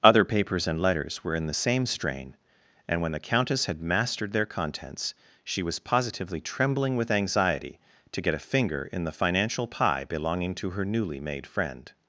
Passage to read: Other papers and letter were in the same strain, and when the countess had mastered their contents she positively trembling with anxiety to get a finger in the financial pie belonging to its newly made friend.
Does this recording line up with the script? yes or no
no